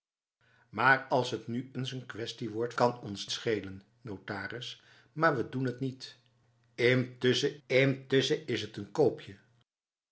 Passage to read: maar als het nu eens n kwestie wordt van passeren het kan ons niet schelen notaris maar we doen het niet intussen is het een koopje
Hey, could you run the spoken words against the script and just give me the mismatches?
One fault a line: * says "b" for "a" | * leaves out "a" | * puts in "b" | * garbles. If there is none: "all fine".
* leaves out "van passeren het"
* leaves out "niet"
* puts in "intussen"